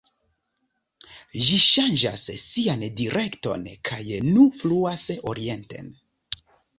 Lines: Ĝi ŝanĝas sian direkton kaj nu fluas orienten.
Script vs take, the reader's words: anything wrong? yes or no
no